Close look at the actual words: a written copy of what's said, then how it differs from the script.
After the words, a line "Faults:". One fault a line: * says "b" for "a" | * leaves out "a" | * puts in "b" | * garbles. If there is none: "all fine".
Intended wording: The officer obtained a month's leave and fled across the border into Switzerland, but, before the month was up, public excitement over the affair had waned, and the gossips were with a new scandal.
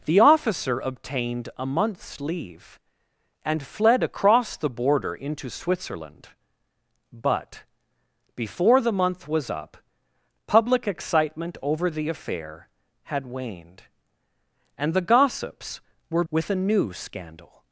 The officer obtained a month's leave and fled across the border into Switzerland, but, before the month was up, public excitement over the affair had waned, and the gossips were with a new scandal.
Faults:
all fine